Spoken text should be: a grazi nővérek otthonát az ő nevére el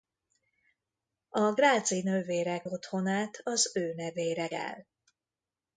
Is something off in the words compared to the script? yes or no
no